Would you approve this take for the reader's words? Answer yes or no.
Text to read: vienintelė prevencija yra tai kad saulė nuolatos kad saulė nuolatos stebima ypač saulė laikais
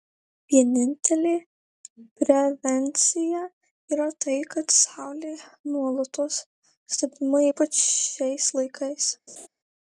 no